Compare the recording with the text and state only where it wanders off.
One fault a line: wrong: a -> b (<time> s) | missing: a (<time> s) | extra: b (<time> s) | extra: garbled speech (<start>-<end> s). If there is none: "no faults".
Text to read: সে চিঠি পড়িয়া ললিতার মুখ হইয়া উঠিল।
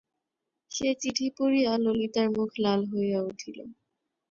extra: লাল (2.6 s)